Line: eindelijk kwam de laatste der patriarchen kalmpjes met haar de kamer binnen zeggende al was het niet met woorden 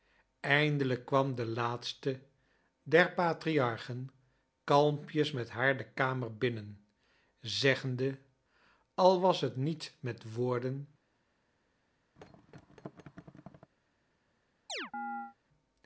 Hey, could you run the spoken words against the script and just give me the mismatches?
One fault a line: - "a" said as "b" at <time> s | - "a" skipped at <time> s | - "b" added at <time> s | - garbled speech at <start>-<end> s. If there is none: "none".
none